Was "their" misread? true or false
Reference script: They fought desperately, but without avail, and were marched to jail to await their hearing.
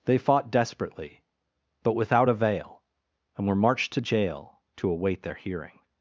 false